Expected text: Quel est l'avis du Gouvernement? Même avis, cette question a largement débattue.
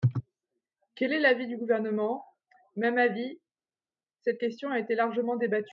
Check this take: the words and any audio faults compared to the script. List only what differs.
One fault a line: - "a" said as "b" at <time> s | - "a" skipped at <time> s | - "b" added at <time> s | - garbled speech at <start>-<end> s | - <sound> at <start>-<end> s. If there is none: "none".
- "été" added at 4.8 s